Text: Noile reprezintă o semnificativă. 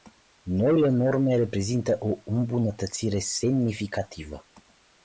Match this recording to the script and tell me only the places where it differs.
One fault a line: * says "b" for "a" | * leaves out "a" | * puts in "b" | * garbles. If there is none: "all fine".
* puts in "norme"
* puts in "îmbunătățire"